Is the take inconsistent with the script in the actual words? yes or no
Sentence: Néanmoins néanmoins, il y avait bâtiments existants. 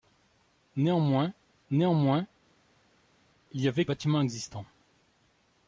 no